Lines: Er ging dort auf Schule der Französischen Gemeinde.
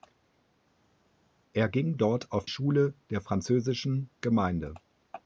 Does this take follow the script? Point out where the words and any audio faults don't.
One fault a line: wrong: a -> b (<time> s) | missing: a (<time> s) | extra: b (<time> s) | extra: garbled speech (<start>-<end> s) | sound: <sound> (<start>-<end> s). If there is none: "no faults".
no faults